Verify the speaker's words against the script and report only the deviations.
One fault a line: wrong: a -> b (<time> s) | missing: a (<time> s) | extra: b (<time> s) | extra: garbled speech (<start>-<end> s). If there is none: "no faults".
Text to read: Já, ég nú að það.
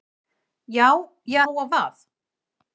no faults